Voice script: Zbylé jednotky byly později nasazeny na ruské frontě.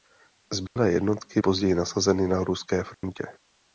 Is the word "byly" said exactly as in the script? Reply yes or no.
no